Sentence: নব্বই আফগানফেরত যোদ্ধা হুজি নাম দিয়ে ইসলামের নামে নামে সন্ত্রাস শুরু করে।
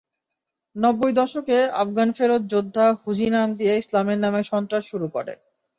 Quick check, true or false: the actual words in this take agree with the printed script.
false